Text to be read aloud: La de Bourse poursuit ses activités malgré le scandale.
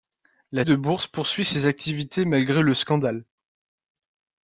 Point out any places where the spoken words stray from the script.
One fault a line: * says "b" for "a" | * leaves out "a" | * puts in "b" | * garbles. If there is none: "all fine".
all fine